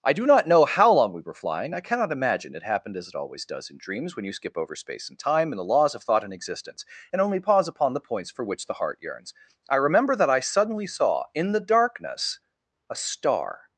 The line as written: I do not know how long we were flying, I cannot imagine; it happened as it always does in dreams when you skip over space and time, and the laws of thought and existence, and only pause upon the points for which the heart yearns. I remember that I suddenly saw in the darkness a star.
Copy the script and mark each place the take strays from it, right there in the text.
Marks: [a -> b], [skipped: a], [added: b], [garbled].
I do not know how long we were flying, I cannot imagine; it happened as it always does in dreams when you skip over space and time, and the laws of thought and existence, and only pause upon the points for which the heart yearns. I remember that I suddenly saw in the darkness a star.